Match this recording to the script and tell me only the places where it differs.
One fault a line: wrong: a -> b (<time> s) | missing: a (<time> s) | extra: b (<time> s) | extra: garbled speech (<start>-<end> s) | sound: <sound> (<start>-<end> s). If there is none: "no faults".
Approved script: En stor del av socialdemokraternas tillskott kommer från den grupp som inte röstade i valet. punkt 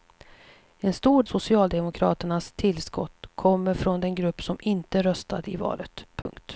missing: del av (1.2 s)
sound: dropout (6.2-6.3 s)